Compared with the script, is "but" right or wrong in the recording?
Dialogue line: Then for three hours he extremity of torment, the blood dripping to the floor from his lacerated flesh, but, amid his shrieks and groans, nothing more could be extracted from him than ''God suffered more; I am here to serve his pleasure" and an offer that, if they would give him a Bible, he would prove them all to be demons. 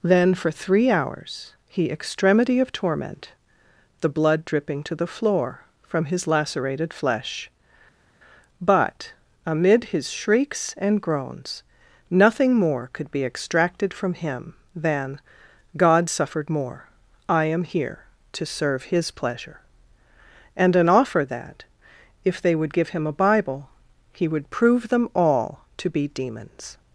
right